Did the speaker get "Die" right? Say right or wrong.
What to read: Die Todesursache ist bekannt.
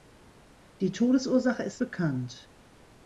right